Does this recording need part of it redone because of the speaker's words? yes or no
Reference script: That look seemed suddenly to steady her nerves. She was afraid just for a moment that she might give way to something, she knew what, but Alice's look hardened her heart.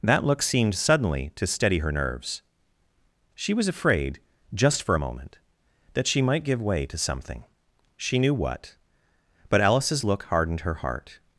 no